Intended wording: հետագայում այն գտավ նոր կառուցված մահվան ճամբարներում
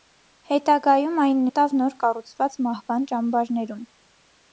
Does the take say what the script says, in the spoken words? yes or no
yes